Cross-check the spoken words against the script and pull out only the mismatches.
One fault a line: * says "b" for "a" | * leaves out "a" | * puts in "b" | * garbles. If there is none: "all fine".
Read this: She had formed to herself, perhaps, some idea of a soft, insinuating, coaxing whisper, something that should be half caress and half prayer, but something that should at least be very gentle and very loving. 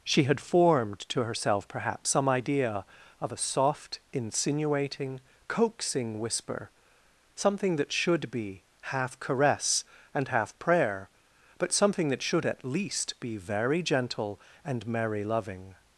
* says "merry" for "very"